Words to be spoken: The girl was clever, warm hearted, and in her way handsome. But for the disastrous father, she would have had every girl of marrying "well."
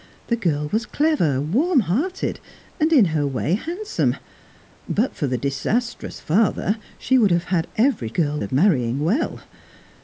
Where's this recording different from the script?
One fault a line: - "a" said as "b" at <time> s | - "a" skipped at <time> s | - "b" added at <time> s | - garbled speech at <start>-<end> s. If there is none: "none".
none